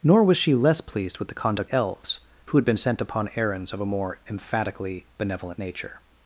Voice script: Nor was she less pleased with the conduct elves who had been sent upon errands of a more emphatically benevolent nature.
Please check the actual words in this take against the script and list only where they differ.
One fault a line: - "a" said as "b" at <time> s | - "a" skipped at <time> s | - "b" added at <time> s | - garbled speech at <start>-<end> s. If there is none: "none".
none